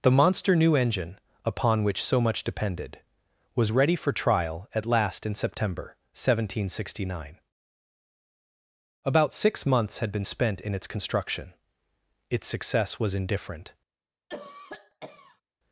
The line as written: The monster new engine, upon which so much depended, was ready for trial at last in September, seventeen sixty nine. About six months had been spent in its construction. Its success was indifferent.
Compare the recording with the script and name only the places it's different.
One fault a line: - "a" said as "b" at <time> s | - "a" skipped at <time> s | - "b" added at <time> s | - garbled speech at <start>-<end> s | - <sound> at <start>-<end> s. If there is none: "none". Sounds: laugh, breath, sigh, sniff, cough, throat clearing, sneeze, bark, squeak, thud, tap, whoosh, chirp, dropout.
- cough at 14.3-15.4 s